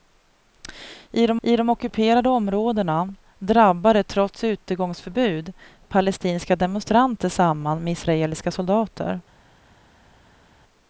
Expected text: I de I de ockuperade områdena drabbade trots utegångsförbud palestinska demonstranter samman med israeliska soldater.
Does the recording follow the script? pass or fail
pass